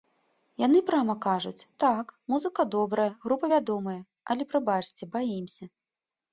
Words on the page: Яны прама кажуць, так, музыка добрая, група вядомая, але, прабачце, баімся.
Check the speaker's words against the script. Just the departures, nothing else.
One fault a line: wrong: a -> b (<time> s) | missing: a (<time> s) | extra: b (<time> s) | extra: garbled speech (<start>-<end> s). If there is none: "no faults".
no faults